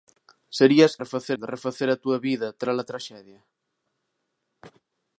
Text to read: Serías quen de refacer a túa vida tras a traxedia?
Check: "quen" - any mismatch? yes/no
yes